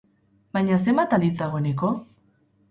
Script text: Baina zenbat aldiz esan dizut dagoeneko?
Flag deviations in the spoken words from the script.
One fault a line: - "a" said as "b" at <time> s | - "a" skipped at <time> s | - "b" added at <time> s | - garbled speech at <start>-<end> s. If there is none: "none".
- "esan dizut" skipped at 1.3 s